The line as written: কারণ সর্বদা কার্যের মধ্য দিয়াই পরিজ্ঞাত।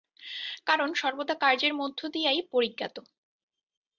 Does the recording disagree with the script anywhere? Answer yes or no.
no